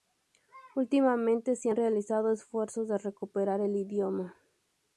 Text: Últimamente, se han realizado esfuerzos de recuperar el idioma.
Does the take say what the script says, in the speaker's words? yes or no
yes